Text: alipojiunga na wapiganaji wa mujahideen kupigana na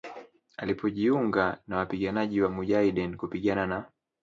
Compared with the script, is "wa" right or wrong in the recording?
right